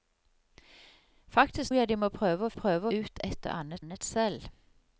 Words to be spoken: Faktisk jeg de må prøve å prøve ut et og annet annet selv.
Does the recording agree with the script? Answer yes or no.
yes